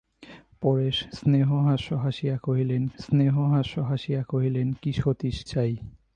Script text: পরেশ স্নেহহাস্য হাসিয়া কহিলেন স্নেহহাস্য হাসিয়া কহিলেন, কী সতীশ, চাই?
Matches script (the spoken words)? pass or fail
pass